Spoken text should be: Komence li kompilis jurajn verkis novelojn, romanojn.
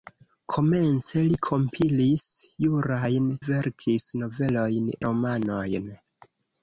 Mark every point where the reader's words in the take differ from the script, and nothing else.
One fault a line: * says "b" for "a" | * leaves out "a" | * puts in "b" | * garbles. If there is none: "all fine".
all fine